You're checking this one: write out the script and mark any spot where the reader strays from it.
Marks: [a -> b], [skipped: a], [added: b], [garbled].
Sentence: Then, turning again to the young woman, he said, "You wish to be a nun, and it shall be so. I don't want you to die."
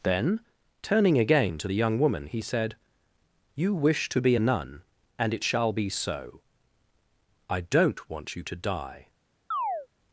Then, turning again to the young woman, he said, "You wish to be a nun, and it shall be so. I don't want you to die."